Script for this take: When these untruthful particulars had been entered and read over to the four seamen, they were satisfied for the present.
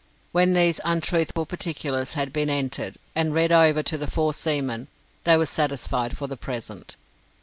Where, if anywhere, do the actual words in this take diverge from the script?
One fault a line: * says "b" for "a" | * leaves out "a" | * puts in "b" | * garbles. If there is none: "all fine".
all fine